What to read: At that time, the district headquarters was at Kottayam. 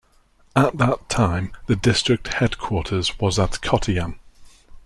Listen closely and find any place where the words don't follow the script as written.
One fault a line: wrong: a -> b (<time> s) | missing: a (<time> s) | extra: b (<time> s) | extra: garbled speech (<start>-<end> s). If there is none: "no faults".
no faults